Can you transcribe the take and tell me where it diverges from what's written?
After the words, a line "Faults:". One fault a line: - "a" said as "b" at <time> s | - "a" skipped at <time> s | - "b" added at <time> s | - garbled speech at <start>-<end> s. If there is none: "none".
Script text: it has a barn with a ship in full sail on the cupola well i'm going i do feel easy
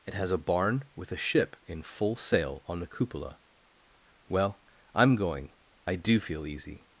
it has a barn with a ship in full sail on the cupola well i'm going i do feel easy
Faults:
none